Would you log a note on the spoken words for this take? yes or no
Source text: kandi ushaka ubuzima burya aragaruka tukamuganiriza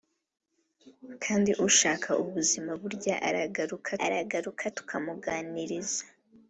yes